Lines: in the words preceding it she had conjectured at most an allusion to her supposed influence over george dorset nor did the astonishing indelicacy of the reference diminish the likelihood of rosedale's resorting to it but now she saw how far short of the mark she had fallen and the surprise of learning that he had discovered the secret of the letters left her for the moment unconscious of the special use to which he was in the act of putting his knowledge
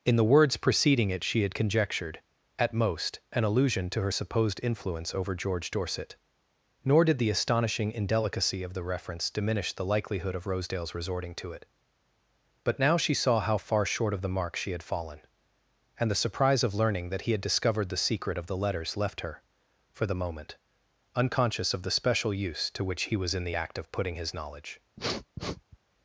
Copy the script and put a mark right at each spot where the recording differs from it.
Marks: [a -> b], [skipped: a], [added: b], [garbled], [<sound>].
in the words preceding it she had conjectured at most an allusion to her supposed influence over george dorset nor did the astonishing indelicacy of the reference diminish the likelihood of rosedale's resorting to it but now she saw how far short of the mark she had fallen and the surprise of learning that he had discovered the secret of the letters left her for the moment unconscious of the special use to which he was in the act of putting his knowledge [sniff]